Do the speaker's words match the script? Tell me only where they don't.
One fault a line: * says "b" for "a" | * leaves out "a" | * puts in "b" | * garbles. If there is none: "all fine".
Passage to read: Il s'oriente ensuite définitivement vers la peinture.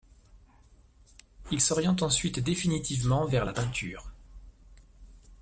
all fine